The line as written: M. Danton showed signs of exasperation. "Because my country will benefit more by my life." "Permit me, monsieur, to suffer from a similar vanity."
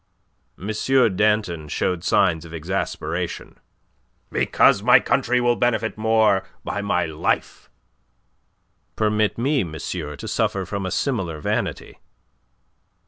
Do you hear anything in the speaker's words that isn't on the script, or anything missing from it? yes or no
no